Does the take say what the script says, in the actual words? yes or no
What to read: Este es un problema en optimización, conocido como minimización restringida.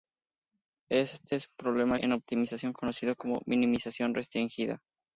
yes